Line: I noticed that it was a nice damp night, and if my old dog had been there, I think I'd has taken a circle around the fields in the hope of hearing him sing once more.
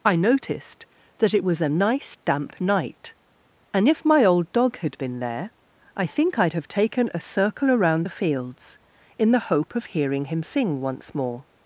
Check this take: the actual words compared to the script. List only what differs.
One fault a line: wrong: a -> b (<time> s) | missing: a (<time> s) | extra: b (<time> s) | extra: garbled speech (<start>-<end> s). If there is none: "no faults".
wrong: has -> have (6.5 s)